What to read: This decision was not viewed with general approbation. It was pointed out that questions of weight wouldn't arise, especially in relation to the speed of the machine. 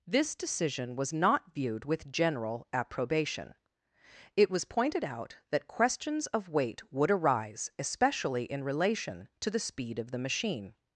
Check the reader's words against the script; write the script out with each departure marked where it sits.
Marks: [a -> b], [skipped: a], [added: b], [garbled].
This decision was not viewed with general approbation. It was pointed out that questions of weight [wouldn't -> would] arise, especially in relation to the speed of the machine.